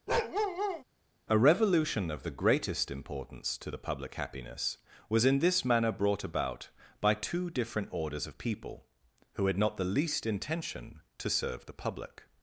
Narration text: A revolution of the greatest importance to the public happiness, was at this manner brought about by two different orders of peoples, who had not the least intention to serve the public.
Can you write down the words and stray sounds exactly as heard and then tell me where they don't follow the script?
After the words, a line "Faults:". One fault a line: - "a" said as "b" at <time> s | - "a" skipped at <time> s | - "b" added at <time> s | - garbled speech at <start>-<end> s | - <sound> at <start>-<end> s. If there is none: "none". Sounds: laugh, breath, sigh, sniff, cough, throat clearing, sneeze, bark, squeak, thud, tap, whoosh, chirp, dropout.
A revolution of the greatest importance to the public happiness, was in this manner brought about by two different orders of people, who had not the least intention to serve the public.
Faults:
- bark at 0.1-0.8 s
- "at" said as "in" at 5.2 s
- "peoples" said as "people" at 8.4 s